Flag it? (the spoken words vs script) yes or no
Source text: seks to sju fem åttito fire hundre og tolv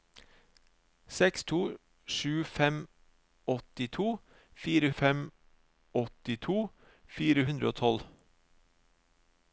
yes